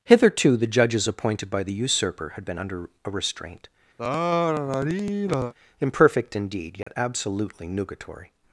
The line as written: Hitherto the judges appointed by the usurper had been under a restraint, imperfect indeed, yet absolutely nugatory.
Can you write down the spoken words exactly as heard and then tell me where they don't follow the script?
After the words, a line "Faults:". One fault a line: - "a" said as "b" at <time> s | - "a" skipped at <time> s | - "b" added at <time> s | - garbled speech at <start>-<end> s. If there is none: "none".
Hitherto the judges appointed by the usurper had been under a restraint, imperfect indeed, yet absolutely nugatory.
Faults:
none